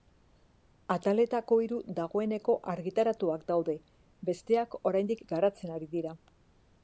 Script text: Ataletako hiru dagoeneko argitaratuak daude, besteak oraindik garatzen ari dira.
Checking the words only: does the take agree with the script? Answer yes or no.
yes